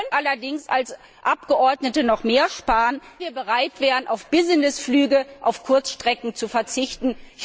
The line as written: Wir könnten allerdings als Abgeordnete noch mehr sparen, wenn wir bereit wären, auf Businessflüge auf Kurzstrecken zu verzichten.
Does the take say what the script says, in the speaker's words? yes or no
no